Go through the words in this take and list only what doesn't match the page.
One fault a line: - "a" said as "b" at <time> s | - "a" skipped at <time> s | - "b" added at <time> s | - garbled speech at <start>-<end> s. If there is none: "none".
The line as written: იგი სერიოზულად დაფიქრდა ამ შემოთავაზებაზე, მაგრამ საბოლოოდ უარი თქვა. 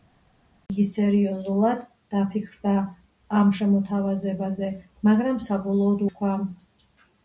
- "უარი" skipped at 6.0 s